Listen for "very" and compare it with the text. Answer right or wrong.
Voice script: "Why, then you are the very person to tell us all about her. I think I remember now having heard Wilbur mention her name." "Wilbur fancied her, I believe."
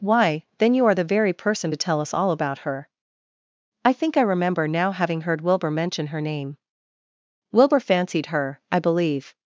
right